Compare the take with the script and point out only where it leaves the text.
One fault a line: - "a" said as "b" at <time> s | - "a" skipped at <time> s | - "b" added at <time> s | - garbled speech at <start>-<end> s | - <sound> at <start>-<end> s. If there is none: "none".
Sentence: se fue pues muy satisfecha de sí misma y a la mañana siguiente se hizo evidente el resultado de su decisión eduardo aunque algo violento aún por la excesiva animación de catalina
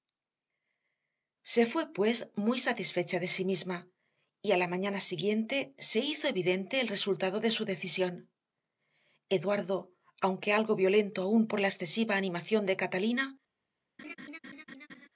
- laugh at 14.0-15.1 s